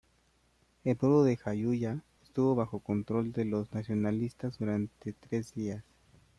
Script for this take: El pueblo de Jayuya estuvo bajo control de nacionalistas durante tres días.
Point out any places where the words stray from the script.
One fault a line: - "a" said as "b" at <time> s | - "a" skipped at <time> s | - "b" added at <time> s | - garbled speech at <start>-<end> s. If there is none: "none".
- "los" added at 3.4 s